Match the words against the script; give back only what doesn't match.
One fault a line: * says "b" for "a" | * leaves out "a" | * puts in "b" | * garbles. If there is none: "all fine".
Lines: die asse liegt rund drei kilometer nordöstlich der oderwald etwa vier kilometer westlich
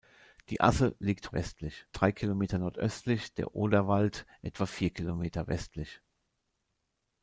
* says "westlich" for "rund"